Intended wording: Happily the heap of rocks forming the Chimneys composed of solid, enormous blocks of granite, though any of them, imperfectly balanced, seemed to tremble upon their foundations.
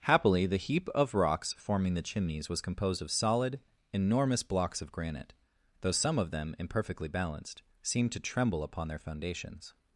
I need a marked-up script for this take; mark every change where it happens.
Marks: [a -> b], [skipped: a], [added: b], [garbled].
Happily the heap of rocks forming the Chimneys [added: was] composed of solid, enormous blocks of granite, though [any -> some] of them, imperfectly balanced, seemed to tremble upon their foundations.